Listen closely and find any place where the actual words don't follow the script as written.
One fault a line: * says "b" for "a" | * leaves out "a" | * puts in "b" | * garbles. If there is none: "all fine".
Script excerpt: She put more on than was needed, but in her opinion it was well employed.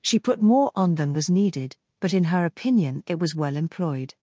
all fine